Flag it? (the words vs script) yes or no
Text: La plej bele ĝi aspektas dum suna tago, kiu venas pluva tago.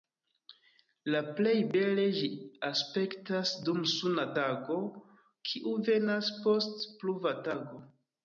yes